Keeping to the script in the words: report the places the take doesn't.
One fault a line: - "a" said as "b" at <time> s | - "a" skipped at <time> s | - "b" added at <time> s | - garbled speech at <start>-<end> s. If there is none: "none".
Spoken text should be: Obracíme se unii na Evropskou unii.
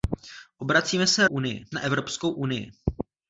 none